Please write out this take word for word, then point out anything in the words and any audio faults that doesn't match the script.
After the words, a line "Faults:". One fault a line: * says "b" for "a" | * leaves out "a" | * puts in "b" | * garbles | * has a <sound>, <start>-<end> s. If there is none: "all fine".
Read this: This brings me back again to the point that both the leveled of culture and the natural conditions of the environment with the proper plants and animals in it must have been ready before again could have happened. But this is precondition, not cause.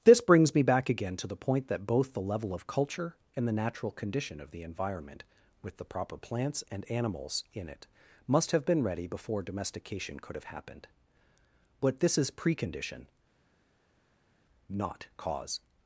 This brings me back again to the point that both the level of culture and the natural condition of the environment with the proper plants and animals in it must have been ready before domestication could have happened. But this is precondition, not cause.
Faults:
* says "level" for "leveled"
* says "condition" for "conditions"
* says "domestication" for "again"